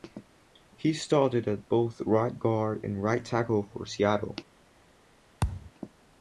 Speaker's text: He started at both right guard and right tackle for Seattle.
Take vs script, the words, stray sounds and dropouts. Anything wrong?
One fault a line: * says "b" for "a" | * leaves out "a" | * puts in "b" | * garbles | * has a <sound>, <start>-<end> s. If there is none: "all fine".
* has a thud, 5.4-5.7 s